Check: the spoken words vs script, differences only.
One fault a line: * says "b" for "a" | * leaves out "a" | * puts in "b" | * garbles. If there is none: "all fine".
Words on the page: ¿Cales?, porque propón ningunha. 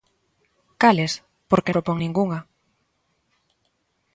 all fine